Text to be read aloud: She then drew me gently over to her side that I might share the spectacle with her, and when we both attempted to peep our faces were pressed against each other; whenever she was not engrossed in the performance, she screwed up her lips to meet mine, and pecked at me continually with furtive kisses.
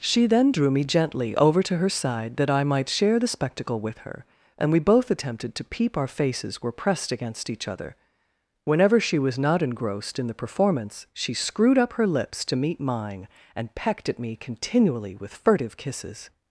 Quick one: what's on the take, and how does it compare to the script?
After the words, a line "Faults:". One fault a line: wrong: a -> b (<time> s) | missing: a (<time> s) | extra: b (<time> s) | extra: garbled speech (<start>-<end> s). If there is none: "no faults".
She then drew me gently over to her side that I might share the spectacle with her, and we both attempted to peep our faces were pressed against each other; whenever she was not engrossed in the performance, she screwed up her lips to meet mine, and pecked at me continually with furtive kisses.
Faults:
missing: when (4.7 s)